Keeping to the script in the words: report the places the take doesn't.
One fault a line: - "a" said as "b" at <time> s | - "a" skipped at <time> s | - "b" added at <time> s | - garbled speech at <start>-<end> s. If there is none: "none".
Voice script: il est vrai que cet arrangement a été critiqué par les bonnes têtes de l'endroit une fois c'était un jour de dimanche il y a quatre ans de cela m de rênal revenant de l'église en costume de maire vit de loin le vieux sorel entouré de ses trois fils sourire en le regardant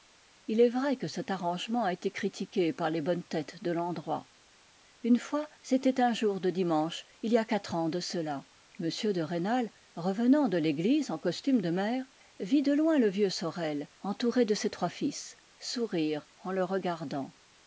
none